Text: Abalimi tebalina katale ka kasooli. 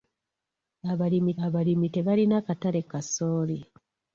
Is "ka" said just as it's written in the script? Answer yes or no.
no